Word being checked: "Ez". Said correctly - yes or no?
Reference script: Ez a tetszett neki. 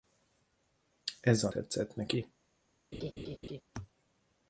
yes